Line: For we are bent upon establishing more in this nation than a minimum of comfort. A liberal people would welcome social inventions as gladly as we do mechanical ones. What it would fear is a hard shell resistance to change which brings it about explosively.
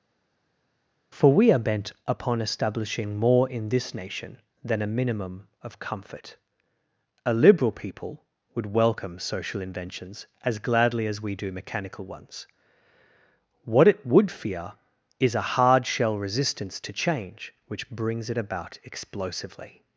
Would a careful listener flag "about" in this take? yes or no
no